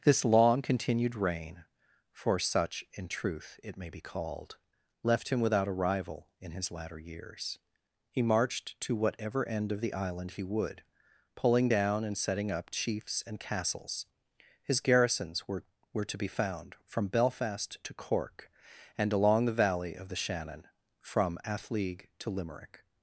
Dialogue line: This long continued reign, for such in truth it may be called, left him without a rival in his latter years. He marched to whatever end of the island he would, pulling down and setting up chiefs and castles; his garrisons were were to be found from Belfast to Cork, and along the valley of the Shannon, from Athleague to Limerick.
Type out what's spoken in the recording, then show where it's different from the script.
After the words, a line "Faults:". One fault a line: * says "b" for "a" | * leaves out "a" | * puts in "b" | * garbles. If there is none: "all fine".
This long continued reign, for such in truth it may be called, left him without a rival in his latter years. He marched to whatever end of the island he would, pulling down and setting up chiefs and castles; his garrisons were were to be found from Belfast to Cork, and along the valley of the Shannon, from Athleague to Limerick.
Faults:
all fine